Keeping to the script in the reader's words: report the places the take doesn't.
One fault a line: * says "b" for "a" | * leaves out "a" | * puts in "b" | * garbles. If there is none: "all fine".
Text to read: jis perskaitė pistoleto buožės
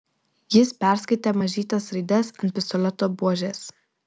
* puts in "mažytes raides ant"